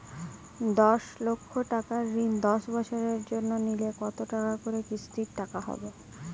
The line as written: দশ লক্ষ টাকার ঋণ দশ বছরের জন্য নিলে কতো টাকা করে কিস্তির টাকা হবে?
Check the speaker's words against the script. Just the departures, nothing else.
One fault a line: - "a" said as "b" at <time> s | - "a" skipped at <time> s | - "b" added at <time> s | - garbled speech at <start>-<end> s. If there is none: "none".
none